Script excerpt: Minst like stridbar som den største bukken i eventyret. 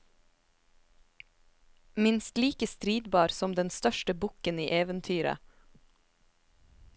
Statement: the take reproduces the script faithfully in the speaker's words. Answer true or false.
true